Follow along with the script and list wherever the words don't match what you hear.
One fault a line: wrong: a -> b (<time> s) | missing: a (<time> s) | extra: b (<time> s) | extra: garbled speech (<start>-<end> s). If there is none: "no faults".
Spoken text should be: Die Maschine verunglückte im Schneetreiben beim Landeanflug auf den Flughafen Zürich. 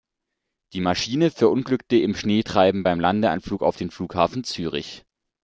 no faults